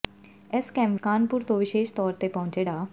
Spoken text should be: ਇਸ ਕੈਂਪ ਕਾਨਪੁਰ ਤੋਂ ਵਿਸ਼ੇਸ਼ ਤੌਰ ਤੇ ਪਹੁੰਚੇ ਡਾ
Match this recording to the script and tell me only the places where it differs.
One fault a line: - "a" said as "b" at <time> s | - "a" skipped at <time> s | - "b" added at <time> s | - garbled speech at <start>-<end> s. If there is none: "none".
none